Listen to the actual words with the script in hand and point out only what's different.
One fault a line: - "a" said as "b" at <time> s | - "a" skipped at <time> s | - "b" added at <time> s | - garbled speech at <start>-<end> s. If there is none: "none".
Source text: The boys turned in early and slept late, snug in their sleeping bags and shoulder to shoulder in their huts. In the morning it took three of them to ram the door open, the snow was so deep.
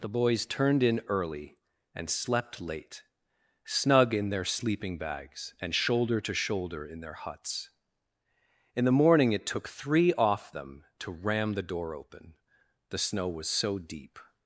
- "of" said as "off" at 10.1 s